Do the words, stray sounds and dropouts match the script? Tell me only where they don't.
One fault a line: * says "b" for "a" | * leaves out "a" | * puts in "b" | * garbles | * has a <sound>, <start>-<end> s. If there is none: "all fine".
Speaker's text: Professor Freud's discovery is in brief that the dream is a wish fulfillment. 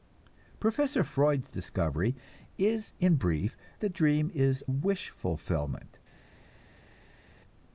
* leaves out "that"
* leaves out "a"